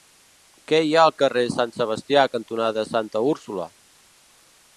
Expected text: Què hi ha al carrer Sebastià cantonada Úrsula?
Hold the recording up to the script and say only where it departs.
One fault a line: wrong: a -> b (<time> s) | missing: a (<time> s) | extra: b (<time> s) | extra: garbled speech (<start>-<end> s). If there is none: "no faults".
extra: Sant (1.6 s)
extra: Santa (2.9 s)